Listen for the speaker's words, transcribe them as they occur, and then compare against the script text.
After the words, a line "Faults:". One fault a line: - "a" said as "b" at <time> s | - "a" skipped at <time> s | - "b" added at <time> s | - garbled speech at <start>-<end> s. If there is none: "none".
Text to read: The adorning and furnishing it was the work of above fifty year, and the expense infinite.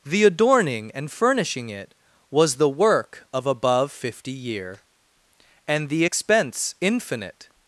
The adorning and furnishing it was the work of above fifty year, and the expense infinite.
Faults:
none